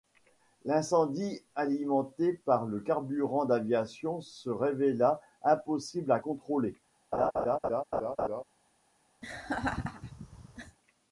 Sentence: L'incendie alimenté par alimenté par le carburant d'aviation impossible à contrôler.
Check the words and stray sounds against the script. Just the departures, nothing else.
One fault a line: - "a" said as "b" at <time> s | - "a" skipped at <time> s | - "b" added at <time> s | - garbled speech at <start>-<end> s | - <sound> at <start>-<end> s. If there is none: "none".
- "alimenté par" skipped at 2.6 s
- "se révéla" added at 4.2 s
- laugh at 7.1-8.4 s
- laugh at 9.2-10.8 s